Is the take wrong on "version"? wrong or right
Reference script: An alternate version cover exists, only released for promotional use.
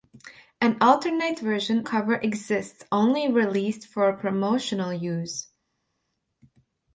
right